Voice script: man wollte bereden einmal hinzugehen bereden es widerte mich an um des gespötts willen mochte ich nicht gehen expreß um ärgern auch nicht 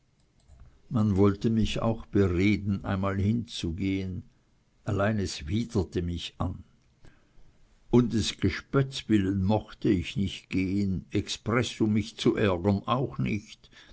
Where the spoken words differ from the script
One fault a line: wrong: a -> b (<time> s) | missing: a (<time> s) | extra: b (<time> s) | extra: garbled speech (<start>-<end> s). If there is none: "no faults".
extra: mich auch (1.5 s)
wrong: bereden -> allein (4.8 s)
extra: mich zu (11.9 s)